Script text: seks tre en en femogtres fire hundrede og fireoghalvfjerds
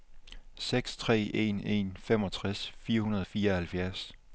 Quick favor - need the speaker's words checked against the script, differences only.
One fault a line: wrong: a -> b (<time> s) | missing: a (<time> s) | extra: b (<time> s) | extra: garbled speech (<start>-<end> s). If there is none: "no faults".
no faults